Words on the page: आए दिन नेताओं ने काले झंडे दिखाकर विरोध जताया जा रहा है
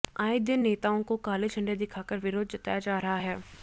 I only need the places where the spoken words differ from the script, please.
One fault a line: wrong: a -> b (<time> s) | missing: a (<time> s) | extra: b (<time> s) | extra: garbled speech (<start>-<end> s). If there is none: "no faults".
wrong: ने -> को (1.0 s)